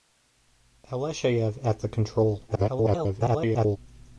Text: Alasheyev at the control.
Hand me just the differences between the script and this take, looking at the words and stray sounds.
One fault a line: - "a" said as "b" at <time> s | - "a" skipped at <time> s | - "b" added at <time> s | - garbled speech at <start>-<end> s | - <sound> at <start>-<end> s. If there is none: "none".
- garbled speech at 2.5-3.8 s